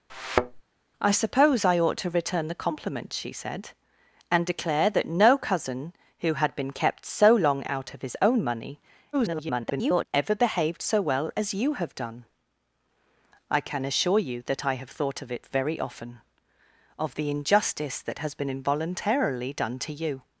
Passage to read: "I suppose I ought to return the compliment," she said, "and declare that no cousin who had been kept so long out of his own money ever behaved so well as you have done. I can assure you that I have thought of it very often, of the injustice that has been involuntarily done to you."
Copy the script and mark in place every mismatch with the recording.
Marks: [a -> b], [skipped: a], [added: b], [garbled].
"I suppose I ought to return the compliment," she said, "and declare that no cousin who had been kept so long out of his own money [garbled] ever behaved so well as you have done. I can assure you that I have thought of it very often, of the injustice that has been involuntarily done to you."